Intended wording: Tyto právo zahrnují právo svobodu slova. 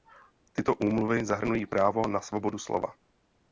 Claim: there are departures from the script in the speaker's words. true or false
true